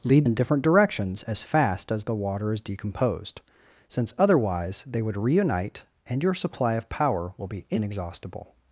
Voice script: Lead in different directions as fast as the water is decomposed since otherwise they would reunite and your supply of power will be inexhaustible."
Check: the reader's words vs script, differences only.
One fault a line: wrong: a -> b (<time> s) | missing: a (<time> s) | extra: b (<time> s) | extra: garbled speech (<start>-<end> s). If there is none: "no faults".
no faults